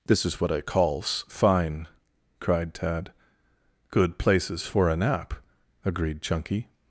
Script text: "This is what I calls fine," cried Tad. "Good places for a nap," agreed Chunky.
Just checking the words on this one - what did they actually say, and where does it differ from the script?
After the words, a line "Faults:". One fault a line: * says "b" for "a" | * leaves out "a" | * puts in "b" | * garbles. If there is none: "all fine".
"This is what I calls fine," cried Tad. "Good places for a nap," agreed Chunky.
Faults:
all fine